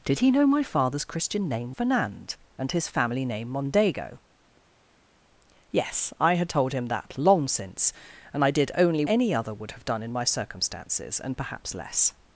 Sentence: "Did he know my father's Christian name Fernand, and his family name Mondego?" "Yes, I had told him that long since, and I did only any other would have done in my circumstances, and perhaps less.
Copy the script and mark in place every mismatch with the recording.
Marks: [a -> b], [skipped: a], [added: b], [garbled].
"Did he know my father's Christian name Fernand, and his family name Mondego?" "Yes, I had told him that long since, and I did only any other would have done in my circumstances, and perhaps less.